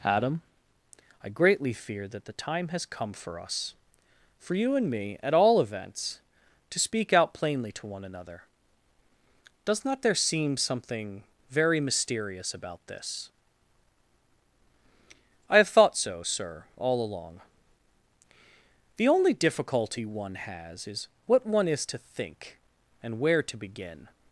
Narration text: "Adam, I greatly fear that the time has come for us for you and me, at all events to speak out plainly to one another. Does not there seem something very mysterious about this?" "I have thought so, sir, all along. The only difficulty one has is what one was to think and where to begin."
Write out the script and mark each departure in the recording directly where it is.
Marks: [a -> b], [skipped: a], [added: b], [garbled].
"Adam, I greatly fear that the time has come for us for you and me, at all events to speak out plainly to one another. Does not there seem something very mysterious about this?" "I have thought so, sir, all along. The only difficulty one has is what one [was -> is] to think and where to begin."